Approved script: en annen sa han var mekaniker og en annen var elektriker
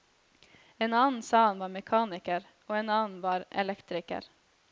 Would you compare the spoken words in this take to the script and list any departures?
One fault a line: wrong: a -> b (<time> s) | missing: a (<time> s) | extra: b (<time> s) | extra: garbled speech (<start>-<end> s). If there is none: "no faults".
no faults